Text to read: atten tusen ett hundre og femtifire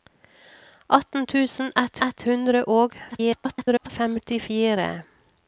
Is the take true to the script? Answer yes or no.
no